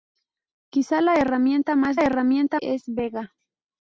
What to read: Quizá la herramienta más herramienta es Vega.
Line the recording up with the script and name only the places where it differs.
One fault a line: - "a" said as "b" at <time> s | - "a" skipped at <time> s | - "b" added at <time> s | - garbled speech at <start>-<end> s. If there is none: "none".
none